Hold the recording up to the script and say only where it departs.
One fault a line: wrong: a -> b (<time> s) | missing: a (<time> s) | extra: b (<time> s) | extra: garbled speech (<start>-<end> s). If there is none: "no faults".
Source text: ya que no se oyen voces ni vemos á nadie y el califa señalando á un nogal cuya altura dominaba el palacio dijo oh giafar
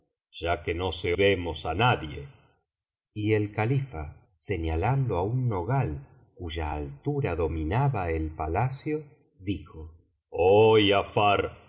missing: oyen voces ni (1.1 s)